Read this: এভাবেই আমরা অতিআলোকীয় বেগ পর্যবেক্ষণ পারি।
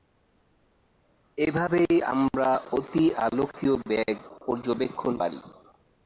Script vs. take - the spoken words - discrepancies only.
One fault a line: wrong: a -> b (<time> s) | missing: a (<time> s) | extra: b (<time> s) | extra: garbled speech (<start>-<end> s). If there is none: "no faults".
no faults